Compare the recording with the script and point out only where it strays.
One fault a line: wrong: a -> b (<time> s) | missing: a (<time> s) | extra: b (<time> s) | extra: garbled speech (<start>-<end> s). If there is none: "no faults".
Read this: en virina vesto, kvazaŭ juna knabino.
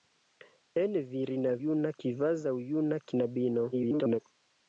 wrong: vesto -> juna (1.7 s)
extra: garbled speech (3.7-4.2 s)